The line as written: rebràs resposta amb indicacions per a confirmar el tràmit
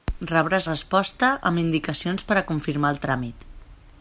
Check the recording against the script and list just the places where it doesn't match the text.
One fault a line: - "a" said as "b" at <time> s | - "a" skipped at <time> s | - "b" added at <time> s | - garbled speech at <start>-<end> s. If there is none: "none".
none